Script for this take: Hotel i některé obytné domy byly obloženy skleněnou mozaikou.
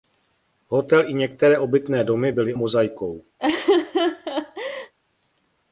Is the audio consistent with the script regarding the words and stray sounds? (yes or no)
no